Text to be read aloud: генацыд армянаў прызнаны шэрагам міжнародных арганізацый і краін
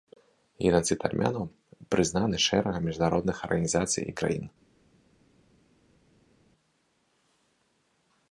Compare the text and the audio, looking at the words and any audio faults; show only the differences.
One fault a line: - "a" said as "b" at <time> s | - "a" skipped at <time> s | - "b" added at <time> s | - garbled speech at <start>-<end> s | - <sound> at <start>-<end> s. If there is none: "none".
none